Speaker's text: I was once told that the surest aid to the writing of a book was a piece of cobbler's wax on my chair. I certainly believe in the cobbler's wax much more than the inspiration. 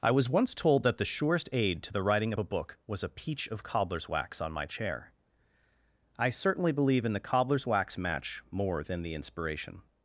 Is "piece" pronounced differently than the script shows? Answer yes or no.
yes